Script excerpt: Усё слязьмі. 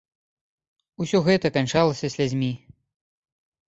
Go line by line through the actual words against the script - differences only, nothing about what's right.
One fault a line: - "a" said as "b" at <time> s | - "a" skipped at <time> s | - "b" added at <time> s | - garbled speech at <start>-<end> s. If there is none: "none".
- "гэта канчалася" added at 1.3 s